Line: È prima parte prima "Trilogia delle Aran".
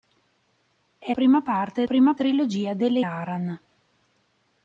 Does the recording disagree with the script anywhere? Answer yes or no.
no